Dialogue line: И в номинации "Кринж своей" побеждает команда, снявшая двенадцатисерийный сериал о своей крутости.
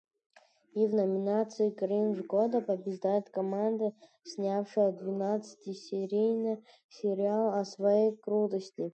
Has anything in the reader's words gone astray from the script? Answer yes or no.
yes